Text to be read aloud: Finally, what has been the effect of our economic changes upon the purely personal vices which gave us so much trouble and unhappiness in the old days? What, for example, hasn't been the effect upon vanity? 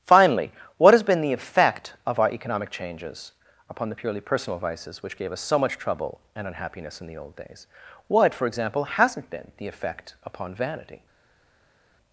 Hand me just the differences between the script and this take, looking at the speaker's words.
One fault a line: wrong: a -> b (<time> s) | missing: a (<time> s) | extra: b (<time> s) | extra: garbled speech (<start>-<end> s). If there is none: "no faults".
no faults